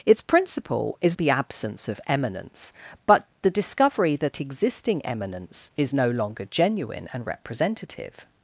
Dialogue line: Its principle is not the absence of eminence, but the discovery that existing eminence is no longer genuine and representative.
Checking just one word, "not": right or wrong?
wrong